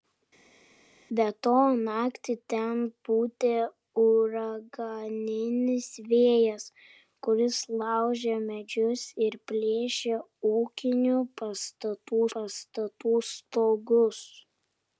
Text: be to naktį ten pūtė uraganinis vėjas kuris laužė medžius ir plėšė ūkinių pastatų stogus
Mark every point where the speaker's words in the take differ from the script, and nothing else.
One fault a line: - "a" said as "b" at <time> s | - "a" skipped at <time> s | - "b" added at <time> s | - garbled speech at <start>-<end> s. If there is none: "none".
- "pastatų" added at 12.4 s